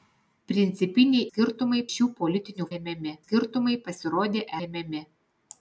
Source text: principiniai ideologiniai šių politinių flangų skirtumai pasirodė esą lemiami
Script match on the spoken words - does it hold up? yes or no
no